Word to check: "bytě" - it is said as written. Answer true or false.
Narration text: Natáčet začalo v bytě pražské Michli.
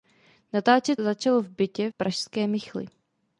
true